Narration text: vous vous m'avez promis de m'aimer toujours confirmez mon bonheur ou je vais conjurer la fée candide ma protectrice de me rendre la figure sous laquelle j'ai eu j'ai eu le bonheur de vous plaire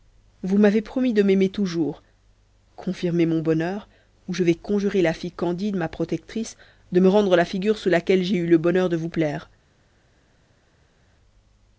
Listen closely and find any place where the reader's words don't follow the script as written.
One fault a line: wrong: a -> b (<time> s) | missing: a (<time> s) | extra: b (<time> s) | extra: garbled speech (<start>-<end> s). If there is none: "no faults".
missing: vous (0.6 s)
missing: j'ai eu (8.5 s)